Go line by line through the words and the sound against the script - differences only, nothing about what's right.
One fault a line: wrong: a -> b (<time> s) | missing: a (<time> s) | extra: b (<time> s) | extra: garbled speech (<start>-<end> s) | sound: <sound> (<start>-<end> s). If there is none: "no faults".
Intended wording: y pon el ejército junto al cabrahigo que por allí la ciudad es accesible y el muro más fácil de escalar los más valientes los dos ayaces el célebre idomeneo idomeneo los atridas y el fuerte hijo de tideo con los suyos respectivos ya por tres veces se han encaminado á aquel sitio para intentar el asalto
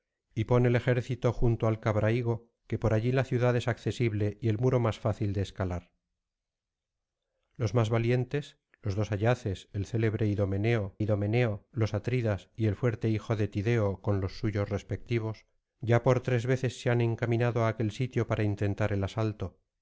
no faults